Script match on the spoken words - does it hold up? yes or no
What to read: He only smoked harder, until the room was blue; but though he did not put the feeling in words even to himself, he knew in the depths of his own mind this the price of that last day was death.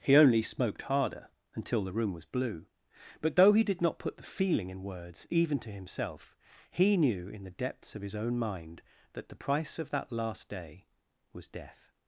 no